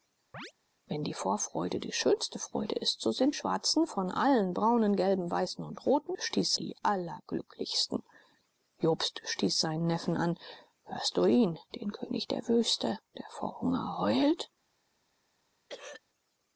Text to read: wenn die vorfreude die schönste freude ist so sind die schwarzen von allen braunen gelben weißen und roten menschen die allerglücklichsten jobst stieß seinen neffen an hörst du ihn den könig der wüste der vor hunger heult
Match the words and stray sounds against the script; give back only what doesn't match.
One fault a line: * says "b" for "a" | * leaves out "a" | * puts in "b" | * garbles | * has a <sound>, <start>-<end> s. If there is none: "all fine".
* has a chirp, 0.3-0.5 s
* leaves out "die"
* says "stieß" for "menschen"
* has a throat clearing, 15.7-16.0 s